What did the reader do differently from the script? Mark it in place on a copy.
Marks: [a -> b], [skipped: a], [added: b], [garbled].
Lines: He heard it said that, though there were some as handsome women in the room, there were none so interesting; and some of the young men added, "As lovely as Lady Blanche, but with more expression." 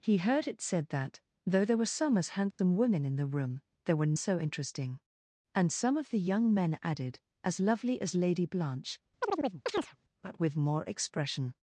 He heard it said that, though there were some as handsome women in the room, there were [skipped: none] so interesting; and some of the young men added, "As lovely as Lady Blanche, but with more expression."